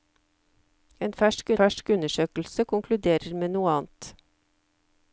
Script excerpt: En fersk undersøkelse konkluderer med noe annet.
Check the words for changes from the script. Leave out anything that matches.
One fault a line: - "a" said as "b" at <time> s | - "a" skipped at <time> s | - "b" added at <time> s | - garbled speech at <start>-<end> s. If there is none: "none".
- "fersk" added at 1.6 s